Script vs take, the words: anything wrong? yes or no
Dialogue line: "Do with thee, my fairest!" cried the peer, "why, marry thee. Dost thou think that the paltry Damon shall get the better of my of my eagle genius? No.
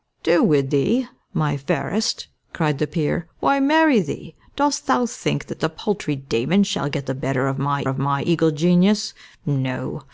no